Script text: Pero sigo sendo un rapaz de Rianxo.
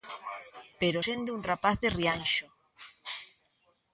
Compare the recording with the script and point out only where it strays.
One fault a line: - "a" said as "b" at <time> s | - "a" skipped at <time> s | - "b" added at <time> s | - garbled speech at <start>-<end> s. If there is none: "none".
- "sigo" skipped at 1.0 s